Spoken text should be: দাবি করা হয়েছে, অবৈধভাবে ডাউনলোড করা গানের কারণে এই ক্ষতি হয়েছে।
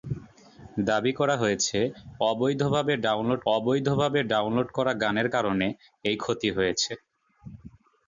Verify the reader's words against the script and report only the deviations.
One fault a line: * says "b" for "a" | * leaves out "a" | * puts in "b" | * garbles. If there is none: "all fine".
* puts in "অবৈধভাবে ডাউনলোড"